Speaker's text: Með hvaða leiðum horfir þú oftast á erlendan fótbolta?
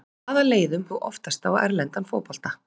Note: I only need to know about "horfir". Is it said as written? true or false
false